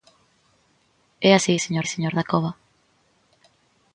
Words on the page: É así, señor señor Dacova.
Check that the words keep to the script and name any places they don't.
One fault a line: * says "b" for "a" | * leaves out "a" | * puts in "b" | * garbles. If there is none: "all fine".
all fine